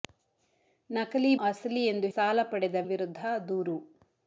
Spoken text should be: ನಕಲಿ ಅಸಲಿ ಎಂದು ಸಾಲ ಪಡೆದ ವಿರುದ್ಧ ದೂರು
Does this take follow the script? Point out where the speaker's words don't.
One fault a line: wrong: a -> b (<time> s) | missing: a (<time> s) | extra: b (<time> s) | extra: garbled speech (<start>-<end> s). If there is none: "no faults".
no faults